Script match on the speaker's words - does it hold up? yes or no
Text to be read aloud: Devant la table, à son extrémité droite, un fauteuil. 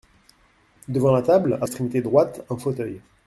no